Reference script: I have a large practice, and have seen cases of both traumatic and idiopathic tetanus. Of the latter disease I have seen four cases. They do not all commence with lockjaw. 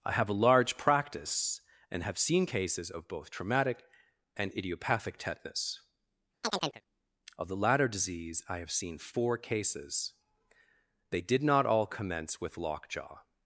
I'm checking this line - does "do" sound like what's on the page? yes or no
no